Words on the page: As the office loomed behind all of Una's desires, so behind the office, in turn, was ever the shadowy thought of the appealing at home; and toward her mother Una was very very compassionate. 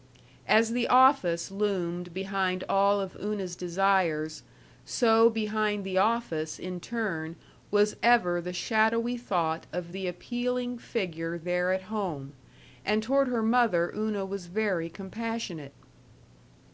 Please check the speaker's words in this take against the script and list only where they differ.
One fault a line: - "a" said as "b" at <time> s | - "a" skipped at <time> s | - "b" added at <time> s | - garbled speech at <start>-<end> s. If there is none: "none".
- "figure there" added at 10.8 s
- "very" skipped at 14.9 s